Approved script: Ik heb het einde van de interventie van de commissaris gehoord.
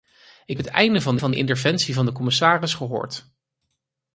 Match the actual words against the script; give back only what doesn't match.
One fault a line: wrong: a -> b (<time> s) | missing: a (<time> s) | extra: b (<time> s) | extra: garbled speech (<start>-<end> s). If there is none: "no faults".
missing: heb (0.6 s)
extra: van (1.2 s)